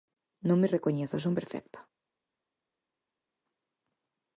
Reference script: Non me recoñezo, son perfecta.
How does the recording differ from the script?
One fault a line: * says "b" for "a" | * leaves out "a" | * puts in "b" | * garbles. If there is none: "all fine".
all fine